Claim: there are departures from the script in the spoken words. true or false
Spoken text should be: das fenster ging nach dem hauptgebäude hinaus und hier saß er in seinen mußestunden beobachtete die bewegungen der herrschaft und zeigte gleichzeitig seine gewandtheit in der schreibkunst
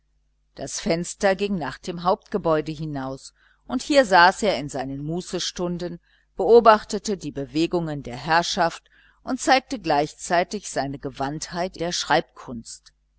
true